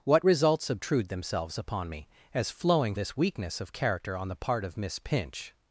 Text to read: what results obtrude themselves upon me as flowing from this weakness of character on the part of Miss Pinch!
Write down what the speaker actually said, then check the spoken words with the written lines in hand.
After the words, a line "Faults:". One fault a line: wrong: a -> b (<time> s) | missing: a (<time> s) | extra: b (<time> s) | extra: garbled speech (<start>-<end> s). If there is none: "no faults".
what results obtrude themselves upon me as flowing this weakness of character on the part of Miss Pinch!
Faults:
missing: from (2.9 s)